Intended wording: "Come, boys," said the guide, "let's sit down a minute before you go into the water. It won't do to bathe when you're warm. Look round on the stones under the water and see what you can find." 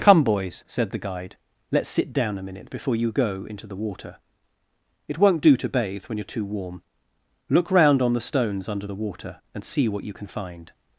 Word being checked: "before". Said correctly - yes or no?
yes